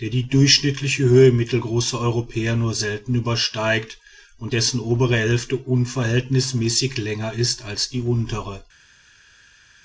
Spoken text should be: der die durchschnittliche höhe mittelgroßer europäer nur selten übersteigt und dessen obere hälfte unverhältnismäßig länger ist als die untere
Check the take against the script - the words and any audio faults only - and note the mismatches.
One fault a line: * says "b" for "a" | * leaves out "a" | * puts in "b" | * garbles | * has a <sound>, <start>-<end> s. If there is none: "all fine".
all fine